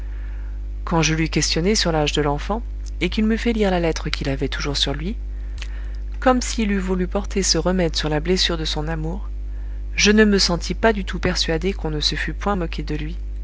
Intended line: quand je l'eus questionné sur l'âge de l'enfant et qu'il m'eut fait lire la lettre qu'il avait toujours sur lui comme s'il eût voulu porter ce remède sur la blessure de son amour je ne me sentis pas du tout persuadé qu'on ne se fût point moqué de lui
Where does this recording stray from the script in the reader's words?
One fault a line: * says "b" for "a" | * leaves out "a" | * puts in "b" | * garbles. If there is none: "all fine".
all fine